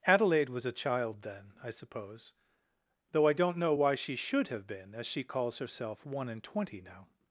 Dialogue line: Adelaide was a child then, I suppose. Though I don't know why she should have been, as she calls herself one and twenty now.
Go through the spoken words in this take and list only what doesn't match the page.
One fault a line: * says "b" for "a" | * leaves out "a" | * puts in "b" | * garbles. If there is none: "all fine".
all fine